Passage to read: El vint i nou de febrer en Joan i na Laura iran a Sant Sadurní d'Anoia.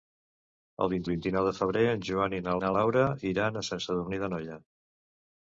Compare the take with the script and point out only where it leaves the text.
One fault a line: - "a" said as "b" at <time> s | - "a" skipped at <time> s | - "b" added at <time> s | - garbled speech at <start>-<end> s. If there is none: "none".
- "vint" added at 1.1 s
- "na" added at 2.6 s